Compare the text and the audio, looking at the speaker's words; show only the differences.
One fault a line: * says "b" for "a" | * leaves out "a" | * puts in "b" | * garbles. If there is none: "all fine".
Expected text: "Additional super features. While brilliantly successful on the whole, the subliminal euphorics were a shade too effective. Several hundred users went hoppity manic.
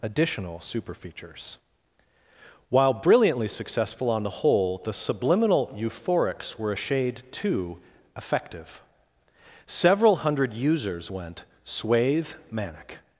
* says "swathe" for "hoppity"